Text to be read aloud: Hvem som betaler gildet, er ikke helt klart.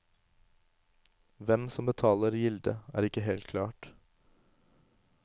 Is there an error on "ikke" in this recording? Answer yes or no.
no